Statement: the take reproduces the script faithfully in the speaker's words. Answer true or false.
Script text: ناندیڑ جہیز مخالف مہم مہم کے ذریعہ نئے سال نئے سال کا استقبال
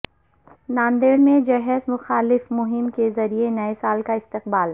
false